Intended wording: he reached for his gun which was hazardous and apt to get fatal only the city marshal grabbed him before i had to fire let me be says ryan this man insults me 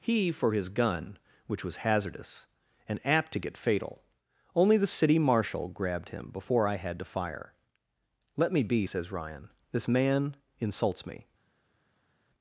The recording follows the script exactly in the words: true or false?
false